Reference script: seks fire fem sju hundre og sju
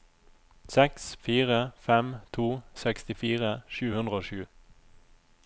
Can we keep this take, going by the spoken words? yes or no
no